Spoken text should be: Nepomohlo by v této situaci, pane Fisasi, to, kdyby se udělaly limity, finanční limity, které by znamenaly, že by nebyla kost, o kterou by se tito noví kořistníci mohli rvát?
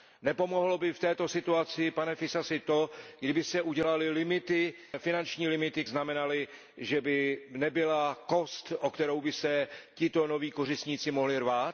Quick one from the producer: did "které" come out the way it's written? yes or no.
no